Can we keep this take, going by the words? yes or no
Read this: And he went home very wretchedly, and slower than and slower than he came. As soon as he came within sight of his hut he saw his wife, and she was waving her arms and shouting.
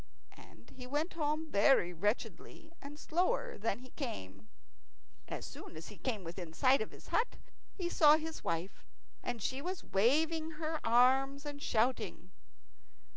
no